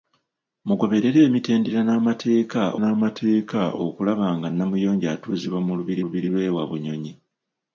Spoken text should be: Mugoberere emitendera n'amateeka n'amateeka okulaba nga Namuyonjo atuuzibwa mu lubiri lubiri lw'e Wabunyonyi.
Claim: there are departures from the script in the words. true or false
false